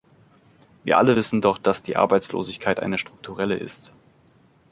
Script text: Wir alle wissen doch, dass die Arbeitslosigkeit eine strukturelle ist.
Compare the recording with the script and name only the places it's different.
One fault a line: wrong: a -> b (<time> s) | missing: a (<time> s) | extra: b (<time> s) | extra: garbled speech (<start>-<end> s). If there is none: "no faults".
no faults